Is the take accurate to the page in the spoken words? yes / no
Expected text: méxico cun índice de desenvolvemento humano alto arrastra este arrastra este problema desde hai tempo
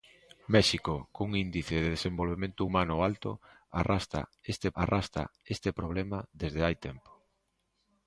yes